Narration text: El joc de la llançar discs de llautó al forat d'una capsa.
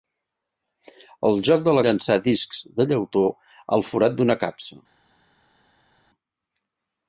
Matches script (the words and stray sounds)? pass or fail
pass